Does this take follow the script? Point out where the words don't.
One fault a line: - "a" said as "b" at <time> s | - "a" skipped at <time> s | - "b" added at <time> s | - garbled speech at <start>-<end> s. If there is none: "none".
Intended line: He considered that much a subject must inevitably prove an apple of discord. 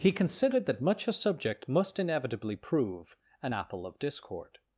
none